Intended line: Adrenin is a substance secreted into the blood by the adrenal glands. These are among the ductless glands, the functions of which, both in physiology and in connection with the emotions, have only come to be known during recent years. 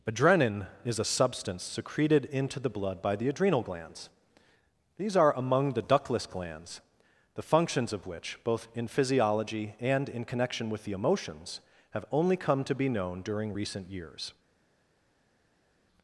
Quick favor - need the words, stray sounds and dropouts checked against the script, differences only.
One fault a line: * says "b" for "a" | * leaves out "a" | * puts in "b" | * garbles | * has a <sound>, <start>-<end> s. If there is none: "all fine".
all fine